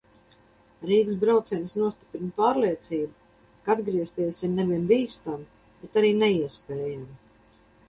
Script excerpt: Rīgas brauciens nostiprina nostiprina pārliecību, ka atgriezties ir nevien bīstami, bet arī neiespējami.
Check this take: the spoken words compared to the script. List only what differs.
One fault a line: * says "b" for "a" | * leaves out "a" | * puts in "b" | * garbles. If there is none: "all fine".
* leaves out "nostiprina"